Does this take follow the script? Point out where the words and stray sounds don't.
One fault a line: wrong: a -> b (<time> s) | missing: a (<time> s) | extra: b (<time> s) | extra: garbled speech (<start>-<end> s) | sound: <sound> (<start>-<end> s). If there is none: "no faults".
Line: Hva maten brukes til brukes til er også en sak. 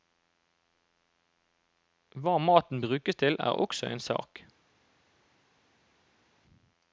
missing: brukes til (3.4 s)